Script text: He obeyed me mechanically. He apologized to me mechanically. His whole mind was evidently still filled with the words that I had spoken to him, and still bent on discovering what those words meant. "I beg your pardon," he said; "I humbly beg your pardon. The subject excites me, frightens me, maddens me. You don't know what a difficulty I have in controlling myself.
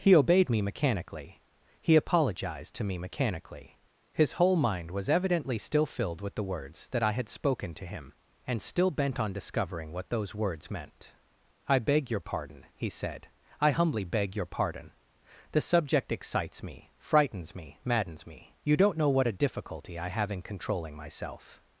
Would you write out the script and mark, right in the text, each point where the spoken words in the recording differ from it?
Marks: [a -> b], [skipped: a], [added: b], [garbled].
He obeyed me mechanically. He apologized to me mechanically. His whole mind was evidently still filled with the words that I had spoken to him, and still bent on discovering what those words meant. "I beg your pardon," he said; "I humbly beg your pardon. The subject excites me, frightens me, maddens me. You don't know what a difficulty I have in controlling myself.